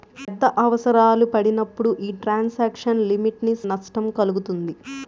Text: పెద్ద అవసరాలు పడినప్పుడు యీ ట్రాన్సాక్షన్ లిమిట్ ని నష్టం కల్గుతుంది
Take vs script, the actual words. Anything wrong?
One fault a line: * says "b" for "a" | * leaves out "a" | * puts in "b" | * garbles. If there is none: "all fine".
all fine